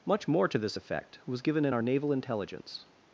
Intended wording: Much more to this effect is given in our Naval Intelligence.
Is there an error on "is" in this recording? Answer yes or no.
yes